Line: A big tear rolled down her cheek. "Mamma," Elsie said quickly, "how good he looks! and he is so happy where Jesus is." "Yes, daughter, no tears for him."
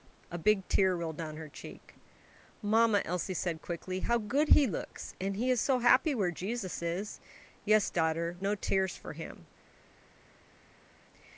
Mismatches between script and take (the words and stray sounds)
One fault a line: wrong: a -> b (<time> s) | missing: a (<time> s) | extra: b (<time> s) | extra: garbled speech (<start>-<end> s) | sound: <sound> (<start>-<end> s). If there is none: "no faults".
no faults